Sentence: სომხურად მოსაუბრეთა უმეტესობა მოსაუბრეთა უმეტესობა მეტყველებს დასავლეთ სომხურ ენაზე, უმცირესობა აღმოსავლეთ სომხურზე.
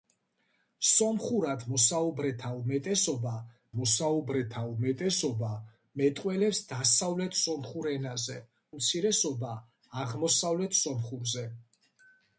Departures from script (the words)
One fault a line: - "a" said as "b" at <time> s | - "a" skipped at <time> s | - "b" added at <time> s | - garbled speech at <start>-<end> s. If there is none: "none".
none